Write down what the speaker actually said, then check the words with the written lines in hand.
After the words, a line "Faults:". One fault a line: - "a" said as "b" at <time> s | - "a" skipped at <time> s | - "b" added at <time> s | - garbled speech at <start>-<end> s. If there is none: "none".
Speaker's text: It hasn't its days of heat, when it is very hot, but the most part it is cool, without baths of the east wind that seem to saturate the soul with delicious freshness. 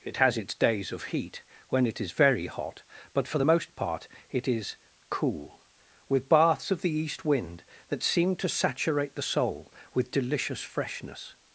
It has its days of heat, when it is very hot, but for the most part it is cool, with baths of the east wind that seem to saturate the soul with delicious freshness.
Faults:
- "hasn't" said as "has" at 0.2 s
- "for" added at 3.3 s
- "without" said as "with" at 6.1 s